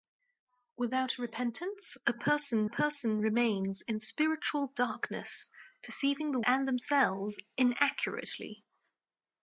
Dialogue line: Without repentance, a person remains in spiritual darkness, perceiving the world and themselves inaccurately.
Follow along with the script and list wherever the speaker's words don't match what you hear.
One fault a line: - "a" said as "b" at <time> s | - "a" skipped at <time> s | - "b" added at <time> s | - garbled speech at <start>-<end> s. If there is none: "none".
- "person" added at 2.7 s
- "world" skipped at 6.4 s